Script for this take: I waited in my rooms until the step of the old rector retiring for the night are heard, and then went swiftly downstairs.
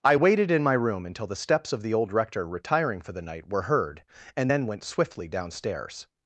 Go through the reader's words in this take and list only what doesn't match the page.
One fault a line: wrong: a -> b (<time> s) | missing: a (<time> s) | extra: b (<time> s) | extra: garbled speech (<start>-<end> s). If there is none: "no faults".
wrong: rooms -> room (0.7 s)
wrong: step -> steps (1.3 s)
wrong: are -> were (3.5 s)